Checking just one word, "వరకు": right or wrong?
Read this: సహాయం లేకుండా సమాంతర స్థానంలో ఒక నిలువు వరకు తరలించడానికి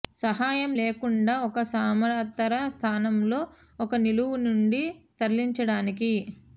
wrong